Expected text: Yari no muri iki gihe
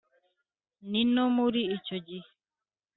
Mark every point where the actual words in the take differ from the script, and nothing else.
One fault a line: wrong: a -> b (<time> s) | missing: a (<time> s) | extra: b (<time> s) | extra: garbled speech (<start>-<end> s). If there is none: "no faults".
wrong: Yari -> Ni (0.9 s)
wrong: iki -> icyo (1.8 s)